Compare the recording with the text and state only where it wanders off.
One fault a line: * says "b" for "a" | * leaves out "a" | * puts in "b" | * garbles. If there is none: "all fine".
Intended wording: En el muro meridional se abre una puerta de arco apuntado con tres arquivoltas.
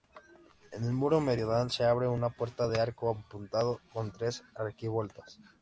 all fine